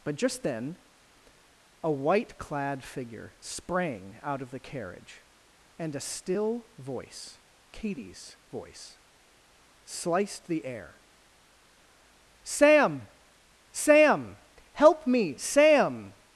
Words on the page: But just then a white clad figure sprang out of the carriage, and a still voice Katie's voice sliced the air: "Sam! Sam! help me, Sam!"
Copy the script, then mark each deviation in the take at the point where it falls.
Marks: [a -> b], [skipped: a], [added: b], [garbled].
But just then a white clad figure sprang out of the carriage, and a still voice Katie's voice sliced the air: "Sam! Sam! help me, Sam!"